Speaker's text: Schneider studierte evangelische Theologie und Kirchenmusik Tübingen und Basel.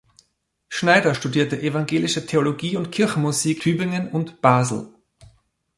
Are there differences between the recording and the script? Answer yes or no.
no